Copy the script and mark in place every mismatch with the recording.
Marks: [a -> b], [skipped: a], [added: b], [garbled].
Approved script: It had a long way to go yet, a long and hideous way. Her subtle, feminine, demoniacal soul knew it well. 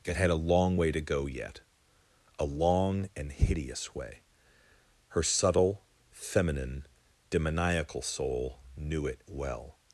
It had a long way to go yet, a long and hideous way. Her subtle, feminine, demoniacal soul knew it well.